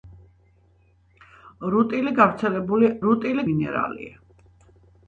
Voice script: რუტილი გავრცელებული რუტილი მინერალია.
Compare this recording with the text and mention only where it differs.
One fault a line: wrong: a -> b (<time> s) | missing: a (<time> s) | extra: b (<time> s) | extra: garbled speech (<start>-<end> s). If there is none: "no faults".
no faults